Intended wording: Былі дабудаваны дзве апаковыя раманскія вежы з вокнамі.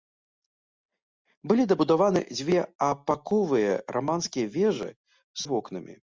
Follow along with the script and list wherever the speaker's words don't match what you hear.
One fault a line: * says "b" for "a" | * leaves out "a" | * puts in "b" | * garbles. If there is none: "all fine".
all fine